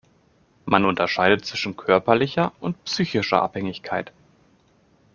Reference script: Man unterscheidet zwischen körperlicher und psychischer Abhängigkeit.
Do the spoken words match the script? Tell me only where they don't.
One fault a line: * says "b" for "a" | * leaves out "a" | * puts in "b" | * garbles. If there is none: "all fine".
all fine